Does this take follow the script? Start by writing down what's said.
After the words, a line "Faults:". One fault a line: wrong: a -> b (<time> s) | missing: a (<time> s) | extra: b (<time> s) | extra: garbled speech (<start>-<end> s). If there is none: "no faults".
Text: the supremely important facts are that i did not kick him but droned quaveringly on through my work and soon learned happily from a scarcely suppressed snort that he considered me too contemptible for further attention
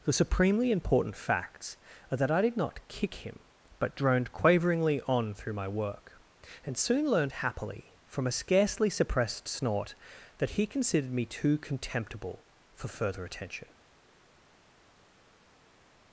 the supremely important facts are that i did not kick him but droned quaveringly on through my work and soon learned happily from a scarcely suppressed snort that he considered me too contemptible for further attention
Faults:
no faults